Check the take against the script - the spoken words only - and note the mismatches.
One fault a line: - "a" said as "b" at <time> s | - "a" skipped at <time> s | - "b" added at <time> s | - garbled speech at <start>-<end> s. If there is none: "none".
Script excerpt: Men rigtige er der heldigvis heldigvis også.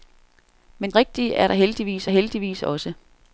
none